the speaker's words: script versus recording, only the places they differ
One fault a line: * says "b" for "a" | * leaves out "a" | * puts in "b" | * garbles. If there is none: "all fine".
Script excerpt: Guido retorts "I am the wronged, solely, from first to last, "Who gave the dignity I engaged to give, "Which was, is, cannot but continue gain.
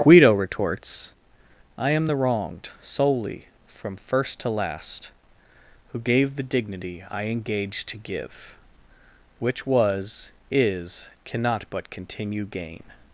all fine